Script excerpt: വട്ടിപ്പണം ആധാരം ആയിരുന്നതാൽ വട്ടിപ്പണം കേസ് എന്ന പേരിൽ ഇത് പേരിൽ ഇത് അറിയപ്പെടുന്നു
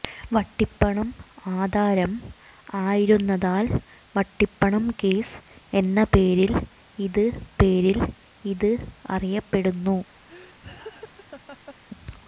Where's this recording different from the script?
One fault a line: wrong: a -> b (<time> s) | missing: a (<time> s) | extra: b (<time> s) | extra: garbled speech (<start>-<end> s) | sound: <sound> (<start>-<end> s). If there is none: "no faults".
sound: laugh (10.3-11.8 s)